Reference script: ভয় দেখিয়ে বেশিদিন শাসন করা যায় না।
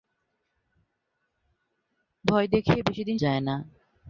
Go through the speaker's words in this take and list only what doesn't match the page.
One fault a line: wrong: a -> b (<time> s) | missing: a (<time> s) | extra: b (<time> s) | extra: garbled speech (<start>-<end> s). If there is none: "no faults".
missing: শাসন করা (3.2 s)